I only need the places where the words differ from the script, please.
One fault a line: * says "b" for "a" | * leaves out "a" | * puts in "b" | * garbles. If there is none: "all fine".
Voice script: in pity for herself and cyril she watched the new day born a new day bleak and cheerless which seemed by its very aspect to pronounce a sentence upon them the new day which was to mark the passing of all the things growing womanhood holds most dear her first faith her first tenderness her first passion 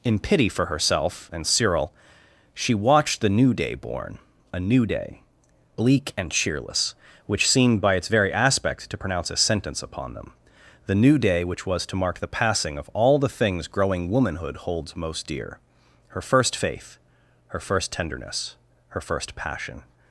all fine